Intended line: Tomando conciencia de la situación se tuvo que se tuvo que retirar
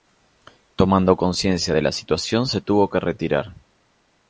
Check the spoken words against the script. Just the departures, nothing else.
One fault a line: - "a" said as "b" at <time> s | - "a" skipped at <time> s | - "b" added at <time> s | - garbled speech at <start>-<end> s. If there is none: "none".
- "se tuvo que" skipped at 3.0 s